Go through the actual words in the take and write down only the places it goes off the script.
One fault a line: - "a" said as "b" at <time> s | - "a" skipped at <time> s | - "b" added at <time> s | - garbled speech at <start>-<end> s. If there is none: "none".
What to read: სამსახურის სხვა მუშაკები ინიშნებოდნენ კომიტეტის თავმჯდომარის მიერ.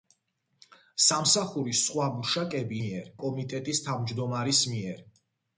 - "ინიშნებოდნენ" said as "მიერ" at 2.8 s